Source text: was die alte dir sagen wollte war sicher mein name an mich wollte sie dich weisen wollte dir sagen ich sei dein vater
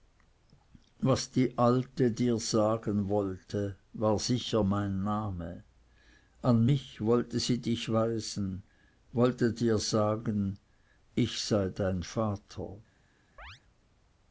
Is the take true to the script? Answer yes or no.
yes